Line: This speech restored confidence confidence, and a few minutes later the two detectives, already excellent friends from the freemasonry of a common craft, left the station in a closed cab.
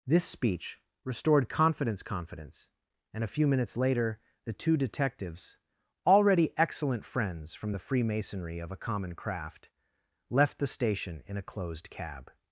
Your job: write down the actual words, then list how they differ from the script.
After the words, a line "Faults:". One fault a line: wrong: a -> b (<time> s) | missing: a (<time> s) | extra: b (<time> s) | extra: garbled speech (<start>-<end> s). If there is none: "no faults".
This speech restored confidence confidence, and a few minutes later the two detectives, already excellent friends from the freemasonry of a common craft, left the station in a closed cab.
Faults:
no faults